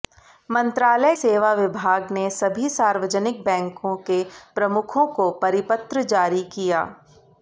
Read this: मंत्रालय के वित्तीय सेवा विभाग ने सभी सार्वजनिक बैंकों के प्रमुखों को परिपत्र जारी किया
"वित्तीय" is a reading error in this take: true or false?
true